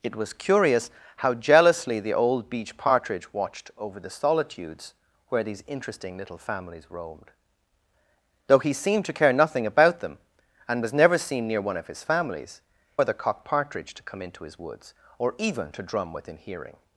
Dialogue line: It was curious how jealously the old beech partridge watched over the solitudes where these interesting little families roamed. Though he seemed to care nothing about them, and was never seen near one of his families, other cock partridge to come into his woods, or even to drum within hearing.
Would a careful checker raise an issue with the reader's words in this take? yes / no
no